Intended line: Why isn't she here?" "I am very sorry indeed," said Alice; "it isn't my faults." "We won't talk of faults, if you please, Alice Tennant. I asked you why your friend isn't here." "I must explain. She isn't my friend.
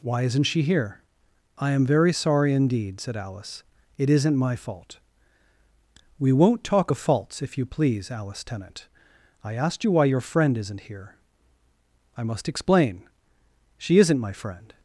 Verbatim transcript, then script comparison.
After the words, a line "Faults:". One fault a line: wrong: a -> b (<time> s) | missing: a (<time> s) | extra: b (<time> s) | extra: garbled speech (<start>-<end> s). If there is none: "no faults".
Why isn't she here?" "I am very sorry indeed," said Alice; "it isn't my fault." "We won't talk of faults, if you please, Alice Tennant. I asked you why your friend isn't here." "I must explain. She isn't my friend.
Faults:
wrong: faults -> fault (4.5 s)